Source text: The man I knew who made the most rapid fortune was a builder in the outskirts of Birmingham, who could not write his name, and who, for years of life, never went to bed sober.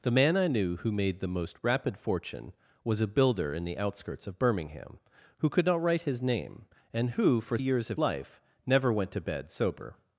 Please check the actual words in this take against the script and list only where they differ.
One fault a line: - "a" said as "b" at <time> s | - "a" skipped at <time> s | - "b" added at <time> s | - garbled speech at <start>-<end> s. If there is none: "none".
none